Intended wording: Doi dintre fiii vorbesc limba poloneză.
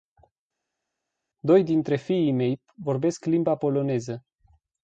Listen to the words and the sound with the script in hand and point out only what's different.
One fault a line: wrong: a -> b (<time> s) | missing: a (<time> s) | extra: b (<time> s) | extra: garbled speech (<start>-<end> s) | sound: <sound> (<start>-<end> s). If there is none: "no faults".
extra: mei (2.3 s)